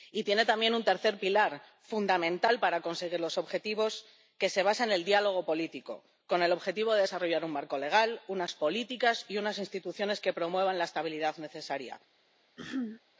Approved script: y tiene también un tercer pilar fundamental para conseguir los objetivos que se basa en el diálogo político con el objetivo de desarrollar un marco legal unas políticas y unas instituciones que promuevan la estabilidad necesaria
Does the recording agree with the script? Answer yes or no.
yes